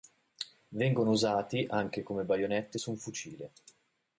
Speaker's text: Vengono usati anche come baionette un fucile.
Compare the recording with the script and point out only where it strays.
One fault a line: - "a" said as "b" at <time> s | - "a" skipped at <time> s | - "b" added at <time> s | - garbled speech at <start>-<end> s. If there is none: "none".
- "su" added at 2.8 s